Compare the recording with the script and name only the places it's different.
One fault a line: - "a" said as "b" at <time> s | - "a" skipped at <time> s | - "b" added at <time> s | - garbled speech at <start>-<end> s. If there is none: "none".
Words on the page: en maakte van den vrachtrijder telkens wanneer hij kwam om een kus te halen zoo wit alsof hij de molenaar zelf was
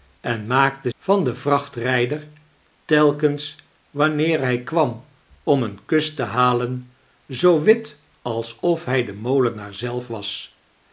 none